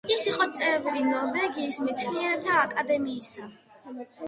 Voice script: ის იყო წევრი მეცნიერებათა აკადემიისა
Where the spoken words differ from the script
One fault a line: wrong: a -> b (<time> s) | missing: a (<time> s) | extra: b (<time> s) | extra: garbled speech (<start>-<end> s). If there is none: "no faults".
extra: ნორვეგიის (1.1 s)